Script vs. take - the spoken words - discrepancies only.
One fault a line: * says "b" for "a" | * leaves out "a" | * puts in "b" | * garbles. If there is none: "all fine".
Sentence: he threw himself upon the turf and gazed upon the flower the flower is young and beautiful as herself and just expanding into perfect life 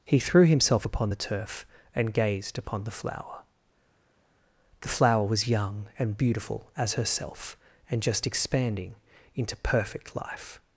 * says "was" for "is"